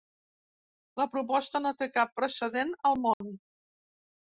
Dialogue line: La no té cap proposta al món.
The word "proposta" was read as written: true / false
false